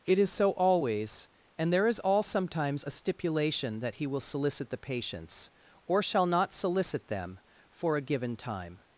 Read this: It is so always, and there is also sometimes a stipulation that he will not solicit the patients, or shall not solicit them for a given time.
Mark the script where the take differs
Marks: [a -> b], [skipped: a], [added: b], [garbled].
It is so always, and there is [also -> all] sometimes a stipulation that he will [skipped: not] solicit the patients, or shall not solicit them for a given time.